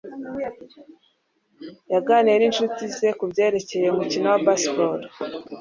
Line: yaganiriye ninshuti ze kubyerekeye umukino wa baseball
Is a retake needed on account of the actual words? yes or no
no